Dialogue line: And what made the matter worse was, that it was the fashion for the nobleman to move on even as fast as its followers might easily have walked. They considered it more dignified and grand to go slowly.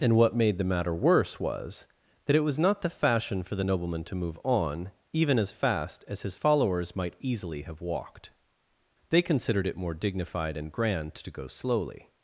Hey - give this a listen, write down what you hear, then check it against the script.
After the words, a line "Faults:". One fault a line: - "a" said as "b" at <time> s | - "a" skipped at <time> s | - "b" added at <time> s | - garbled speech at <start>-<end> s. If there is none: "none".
And what made the matter worse was, that it was not the fashion for the nobleman to move on even as fast as his followers might easily have walked. They considered it more dignified and grand to go slowly.
Faults:
- "not" added at 2.6 s
- "its" said as "his" at 6.2 s